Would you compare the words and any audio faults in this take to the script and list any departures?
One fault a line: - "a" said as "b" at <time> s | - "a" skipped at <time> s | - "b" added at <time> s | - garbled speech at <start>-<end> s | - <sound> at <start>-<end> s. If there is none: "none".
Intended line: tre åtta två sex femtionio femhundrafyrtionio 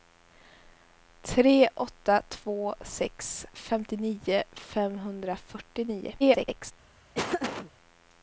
- garbled speech at 6.2-6.7 s
- laugh at 7.1-7.7 s